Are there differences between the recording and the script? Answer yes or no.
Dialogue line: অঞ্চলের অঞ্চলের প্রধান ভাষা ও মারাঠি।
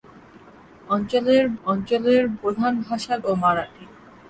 no